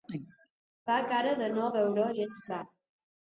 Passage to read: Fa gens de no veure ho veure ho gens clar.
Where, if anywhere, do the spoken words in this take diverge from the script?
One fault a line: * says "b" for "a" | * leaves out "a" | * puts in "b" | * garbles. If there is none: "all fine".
* says "cara" for "gens"
* leaves out "veure ho"